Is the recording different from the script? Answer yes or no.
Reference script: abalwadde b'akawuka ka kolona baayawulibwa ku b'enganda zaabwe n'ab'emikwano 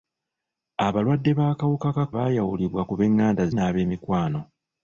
yes